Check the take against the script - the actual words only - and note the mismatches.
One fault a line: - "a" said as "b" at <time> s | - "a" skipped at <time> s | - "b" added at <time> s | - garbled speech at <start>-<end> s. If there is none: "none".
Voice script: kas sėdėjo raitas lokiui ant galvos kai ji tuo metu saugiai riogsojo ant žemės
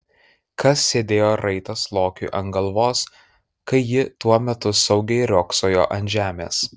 none